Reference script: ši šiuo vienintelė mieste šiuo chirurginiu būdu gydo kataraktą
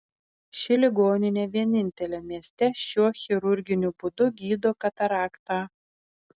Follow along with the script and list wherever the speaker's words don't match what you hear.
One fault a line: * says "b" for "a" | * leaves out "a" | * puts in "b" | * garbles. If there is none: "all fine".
* says "ligoninė" for "šiuo"